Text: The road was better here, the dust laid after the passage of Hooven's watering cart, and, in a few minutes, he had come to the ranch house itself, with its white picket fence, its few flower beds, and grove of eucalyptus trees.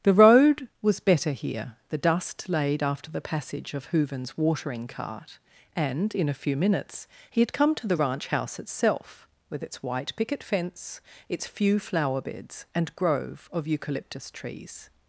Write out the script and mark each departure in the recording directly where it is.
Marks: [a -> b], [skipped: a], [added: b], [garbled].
The road was better here, the dust laid after the passage of Hooven's watering cart, and, in a few minutes, he had come to the ranch house itself, with its white picket fence, its few flower beds, and grove of eucalyptus trees.